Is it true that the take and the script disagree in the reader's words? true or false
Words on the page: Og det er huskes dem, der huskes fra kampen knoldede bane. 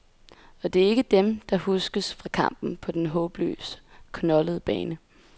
true